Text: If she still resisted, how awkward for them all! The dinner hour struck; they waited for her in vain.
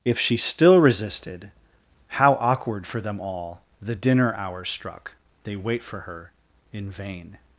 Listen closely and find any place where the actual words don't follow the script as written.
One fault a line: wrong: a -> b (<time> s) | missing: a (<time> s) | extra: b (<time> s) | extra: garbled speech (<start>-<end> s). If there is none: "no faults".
wrong: waited -> wait (5.6 s)